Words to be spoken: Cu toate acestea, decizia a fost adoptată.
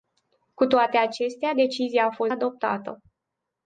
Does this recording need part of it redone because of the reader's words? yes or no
no